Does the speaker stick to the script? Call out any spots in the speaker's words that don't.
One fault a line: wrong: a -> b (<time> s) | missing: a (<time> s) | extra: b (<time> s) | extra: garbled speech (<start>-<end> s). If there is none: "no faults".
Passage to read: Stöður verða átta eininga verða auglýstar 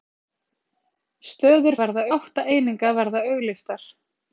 no faults